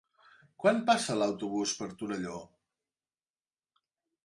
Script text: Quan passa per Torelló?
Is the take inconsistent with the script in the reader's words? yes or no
yes